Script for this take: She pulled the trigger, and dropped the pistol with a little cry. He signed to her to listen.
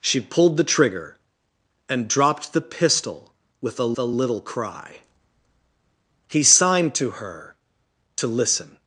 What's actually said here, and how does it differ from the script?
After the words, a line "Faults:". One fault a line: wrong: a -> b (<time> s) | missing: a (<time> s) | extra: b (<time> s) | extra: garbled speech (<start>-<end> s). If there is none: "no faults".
She pulled the trigger, and dropped the pistol with a a little cry. He signed to her to listen.
Faults:
extra: a (4.0 s)